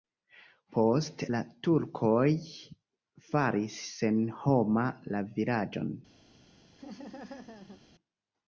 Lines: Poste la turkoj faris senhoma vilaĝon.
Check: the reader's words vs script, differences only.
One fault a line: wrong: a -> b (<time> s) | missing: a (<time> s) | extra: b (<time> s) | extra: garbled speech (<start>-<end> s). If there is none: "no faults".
extra: la (5.1 s)